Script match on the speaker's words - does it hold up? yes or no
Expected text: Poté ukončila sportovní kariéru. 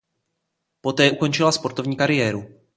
yes